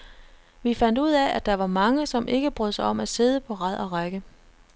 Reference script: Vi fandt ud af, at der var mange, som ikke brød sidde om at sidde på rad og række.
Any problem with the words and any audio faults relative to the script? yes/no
yes